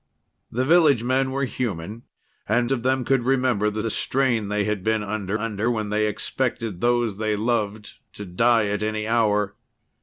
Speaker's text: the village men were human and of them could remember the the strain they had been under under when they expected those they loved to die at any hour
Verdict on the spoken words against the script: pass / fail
pass